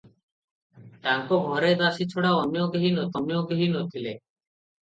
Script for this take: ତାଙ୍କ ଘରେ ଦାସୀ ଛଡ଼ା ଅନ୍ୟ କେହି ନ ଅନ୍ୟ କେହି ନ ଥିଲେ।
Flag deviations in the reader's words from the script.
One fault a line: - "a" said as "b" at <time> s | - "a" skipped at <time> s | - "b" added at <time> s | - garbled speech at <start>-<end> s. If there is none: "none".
none